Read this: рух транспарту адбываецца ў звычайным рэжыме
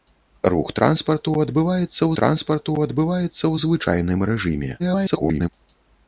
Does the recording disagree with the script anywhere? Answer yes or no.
yes